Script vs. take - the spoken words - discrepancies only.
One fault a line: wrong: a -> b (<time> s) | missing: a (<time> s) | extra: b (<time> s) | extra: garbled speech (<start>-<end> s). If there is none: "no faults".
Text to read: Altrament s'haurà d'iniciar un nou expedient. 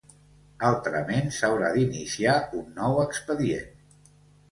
no faults